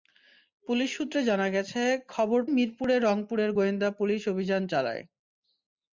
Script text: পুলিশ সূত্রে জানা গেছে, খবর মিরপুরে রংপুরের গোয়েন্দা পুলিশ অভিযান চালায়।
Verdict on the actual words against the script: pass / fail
pass